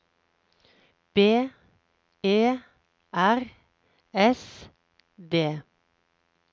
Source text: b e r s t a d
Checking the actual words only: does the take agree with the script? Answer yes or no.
no